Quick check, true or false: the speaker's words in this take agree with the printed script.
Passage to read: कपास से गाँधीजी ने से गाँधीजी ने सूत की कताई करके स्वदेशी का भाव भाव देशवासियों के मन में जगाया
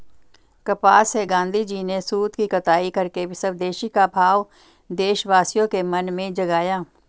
false